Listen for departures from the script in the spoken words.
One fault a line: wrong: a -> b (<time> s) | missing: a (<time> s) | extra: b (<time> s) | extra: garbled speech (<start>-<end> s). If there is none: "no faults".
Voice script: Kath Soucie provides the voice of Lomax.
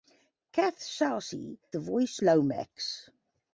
missing: provides (1.6 s)
missing: of (2.2 s)